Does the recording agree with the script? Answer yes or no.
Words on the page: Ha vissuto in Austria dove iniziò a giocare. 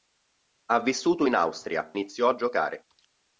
no